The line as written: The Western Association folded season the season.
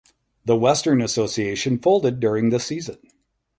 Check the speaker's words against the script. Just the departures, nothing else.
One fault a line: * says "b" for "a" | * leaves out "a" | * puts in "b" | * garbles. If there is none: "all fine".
* says "during" for "season"